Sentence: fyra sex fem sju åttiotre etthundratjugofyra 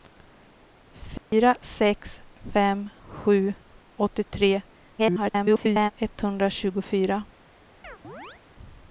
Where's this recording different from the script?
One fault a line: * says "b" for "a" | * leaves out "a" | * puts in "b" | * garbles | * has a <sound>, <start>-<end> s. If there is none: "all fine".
* has a dropout, 1.2-1.3 s
* garbles
* has a chirp, 7.8-8.4 s